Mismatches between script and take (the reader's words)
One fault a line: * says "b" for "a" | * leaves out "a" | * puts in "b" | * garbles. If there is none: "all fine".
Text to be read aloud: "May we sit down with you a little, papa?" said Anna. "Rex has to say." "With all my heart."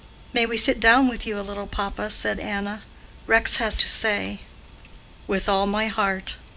all fine